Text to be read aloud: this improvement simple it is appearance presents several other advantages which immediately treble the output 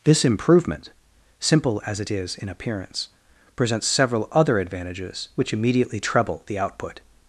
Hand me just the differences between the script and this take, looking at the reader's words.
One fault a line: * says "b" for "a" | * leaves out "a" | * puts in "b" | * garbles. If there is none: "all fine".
* puts in "as"
* puts in "in"